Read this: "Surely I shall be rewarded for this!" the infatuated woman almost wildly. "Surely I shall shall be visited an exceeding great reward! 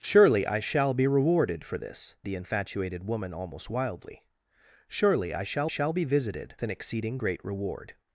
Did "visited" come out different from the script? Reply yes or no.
no